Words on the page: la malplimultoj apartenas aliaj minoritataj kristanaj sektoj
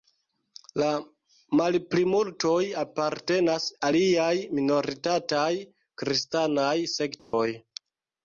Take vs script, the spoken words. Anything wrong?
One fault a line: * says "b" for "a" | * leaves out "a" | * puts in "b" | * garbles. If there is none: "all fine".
all fine